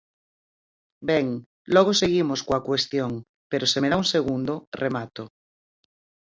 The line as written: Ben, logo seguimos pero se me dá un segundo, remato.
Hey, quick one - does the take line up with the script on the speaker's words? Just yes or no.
no